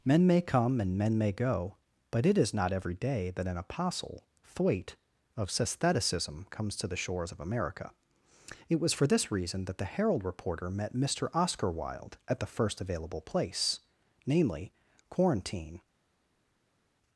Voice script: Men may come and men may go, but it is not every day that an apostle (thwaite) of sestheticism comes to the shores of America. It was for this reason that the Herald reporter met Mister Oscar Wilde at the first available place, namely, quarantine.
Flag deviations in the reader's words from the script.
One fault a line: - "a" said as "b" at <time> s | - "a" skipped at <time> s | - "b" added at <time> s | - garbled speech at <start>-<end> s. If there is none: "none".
none